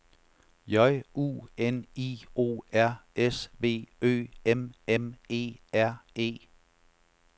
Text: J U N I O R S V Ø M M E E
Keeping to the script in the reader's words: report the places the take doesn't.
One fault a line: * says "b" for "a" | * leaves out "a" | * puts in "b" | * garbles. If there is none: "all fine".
* puts in "R"